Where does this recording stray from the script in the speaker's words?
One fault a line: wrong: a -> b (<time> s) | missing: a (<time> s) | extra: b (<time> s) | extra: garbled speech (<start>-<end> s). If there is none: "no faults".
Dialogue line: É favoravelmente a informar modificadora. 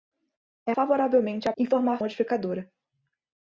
no faults